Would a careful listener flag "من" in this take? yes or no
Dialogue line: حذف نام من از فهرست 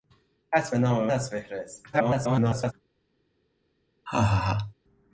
yes